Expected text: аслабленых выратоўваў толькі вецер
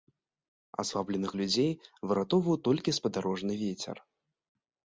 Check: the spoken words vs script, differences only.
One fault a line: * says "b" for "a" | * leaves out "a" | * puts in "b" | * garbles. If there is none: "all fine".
* puts in "людзей"
* puts in "спадарожны"